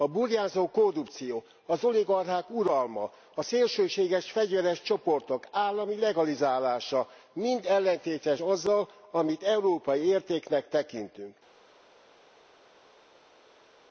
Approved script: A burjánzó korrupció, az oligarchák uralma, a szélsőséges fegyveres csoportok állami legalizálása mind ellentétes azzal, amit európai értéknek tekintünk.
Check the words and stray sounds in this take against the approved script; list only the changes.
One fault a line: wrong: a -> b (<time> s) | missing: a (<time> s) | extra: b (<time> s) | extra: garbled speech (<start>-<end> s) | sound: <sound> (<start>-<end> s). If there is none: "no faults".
no faults